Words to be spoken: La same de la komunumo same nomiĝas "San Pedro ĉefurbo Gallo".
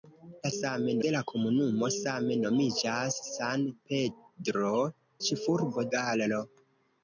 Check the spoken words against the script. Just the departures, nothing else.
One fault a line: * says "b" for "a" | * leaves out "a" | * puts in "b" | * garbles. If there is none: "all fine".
all fine